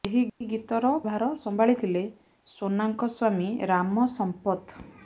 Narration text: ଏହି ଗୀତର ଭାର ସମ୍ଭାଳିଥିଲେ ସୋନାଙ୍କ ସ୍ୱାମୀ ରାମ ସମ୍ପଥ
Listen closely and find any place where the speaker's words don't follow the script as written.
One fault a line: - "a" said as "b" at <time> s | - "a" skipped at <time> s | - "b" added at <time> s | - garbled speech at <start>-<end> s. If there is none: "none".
none